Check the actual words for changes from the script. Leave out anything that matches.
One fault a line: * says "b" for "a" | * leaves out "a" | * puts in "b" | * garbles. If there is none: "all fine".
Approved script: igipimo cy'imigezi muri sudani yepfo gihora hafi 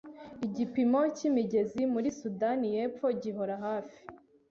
all fine